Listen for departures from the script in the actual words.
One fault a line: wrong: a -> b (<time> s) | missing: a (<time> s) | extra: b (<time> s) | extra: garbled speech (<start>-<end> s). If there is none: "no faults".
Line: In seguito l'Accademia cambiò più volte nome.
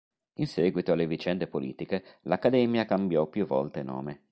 extra: alle vicende politiche (0.9 s)